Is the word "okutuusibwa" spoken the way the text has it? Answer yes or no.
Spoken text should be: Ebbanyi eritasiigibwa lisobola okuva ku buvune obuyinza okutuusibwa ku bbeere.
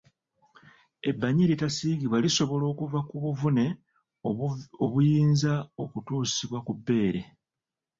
yes